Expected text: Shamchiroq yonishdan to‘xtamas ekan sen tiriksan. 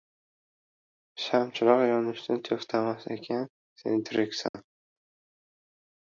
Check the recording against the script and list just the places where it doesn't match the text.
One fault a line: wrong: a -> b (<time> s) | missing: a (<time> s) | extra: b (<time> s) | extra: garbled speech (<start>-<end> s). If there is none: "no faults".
no faults